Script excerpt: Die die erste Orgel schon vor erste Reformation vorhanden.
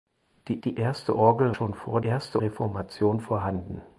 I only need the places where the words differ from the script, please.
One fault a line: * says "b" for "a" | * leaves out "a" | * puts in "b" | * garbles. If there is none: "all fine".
all fine